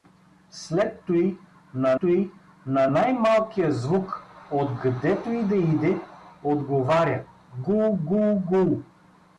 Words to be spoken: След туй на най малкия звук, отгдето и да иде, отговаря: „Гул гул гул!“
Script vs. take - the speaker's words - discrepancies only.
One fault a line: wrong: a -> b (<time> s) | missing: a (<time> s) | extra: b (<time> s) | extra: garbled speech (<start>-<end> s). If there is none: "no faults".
extra: туй на (2.0 s)